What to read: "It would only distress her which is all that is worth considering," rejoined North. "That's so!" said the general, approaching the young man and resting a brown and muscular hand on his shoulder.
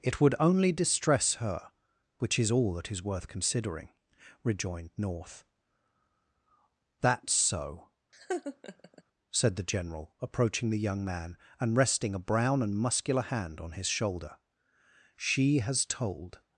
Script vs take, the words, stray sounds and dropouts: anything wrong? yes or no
yes